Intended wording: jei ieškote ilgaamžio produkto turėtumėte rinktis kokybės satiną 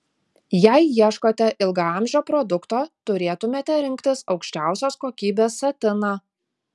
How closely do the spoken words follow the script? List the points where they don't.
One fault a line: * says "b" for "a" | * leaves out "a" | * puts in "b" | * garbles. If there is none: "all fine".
* puts in "aukščiausios"